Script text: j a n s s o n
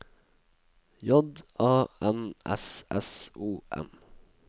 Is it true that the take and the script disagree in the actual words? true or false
false